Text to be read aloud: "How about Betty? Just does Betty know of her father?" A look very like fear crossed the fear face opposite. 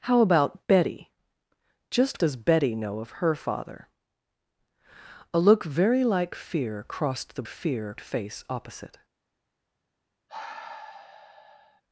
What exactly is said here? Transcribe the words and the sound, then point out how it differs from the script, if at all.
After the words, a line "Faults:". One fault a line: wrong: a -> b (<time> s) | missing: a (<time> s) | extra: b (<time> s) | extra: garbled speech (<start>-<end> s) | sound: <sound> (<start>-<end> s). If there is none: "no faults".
"How about Betty? Just does Betty know of her father?" A look very like fear crossed the fear face opposite.
Faults:
sound: sigh (10.3-11.8 s)